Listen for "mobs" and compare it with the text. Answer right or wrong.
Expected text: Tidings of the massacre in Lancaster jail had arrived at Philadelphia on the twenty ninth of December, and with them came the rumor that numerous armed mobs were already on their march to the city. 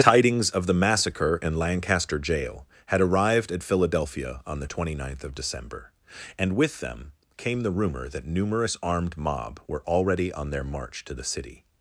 wrong